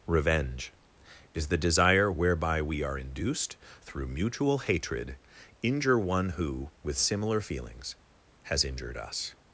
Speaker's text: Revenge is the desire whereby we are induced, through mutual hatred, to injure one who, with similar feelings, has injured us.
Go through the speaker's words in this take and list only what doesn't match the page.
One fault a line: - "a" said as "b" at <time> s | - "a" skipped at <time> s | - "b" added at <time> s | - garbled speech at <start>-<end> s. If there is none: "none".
- "to" skipped at 5.2 s